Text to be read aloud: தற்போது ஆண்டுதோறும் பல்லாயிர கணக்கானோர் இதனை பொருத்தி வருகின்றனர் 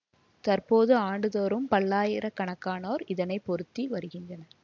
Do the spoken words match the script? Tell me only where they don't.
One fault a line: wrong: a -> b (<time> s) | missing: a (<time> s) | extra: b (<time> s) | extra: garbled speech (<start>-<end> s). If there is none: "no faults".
no faults